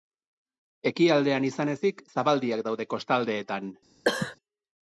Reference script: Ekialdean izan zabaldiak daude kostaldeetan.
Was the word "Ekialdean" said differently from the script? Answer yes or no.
no